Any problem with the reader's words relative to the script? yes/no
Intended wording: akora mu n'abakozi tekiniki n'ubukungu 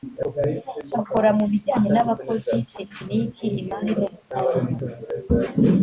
yes